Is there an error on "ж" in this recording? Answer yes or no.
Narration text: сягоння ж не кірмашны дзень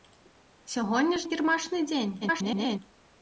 yes